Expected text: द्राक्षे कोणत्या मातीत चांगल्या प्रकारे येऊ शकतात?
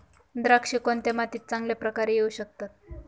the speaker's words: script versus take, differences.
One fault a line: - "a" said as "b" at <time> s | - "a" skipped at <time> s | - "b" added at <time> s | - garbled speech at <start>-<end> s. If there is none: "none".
none